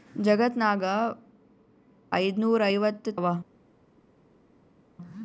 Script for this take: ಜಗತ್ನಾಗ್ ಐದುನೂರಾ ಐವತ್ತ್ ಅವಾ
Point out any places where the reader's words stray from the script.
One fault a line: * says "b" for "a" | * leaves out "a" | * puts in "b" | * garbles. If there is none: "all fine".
all fine